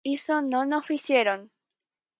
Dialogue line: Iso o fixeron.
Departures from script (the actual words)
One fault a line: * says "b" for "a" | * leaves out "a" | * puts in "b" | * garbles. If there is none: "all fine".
* puts in "non"